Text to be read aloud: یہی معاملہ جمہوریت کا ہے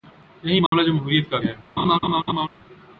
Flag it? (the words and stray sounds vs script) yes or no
yes